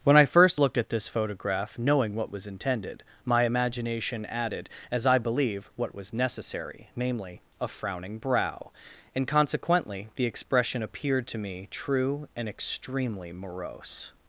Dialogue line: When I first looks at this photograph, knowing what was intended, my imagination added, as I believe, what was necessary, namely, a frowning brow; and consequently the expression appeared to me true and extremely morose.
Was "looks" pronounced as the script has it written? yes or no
no